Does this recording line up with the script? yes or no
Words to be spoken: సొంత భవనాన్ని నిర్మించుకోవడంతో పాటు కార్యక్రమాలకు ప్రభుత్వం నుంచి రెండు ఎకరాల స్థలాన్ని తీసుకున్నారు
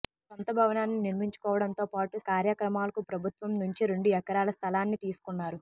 yes